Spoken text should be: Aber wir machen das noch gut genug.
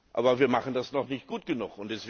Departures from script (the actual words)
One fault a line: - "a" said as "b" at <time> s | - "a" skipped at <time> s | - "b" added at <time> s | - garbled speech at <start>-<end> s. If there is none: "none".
- "nicht" added at 1.1 s